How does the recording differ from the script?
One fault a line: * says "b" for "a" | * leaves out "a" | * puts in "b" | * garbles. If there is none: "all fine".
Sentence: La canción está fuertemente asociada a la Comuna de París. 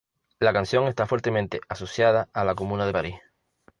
all fine